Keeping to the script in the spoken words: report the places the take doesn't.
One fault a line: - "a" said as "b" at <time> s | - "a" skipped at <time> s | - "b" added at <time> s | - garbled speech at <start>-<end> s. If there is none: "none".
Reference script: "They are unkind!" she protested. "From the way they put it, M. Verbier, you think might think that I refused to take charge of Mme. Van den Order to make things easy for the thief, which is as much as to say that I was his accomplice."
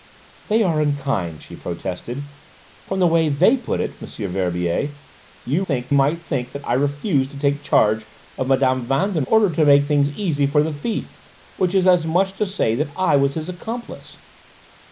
none